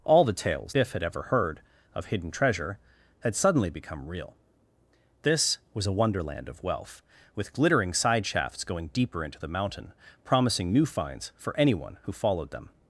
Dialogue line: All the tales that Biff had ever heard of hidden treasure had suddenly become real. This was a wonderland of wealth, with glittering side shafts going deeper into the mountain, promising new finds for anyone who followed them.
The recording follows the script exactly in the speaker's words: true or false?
false